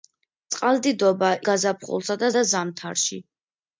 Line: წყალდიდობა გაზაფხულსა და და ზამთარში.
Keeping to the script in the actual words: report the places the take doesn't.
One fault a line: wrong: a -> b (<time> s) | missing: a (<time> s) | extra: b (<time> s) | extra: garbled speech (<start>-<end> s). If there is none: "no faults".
no faults